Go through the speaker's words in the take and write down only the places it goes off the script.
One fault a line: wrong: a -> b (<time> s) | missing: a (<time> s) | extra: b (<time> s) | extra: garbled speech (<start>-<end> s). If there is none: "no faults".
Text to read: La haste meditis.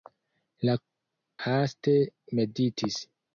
no faults